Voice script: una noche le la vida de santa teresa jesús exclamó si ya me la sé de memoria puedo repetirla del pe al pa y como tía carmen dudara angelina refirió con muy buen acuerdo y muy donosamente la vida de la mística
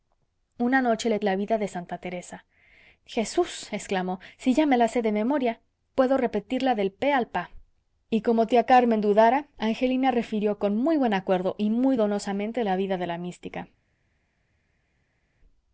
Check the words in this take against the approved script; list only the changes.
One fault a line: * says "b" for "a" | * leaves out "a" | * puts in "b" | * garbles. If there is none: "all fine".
all fine